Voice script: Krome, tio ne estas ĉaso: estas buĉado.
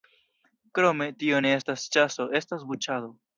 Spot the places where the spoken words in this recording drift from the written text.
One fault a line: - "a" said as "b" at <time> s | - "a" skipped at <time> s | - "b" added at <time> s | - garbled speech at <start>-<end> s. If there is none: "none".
none